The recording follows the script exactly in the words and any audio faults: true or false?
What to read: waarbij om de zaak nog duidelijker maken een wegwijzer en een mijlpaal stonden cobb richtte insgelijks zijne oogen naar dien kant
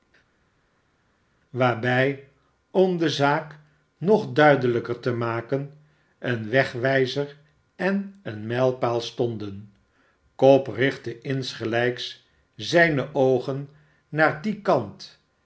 false